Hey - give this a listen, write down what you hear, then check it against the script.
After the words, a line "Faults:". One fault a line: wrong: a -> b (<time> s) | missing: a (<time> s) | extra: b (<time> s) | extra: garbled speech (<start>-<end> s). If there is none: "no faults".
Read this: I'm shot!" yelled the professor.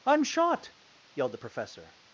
I'm shot!" yelled the professor.
Faults:
no faults